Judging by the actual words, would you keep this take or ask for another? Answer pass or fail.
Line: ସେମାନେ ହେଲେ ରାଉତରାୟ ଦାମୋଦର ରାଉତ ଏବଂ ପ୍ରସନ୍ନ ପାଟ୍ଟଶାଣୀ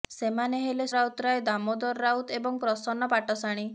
pass